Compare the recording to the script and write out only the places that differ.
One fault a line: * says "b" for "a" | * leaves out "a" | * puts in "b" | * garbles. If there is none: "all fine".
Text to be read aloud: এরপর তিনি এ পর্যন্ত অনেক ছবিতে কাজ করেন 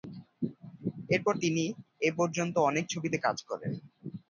all fine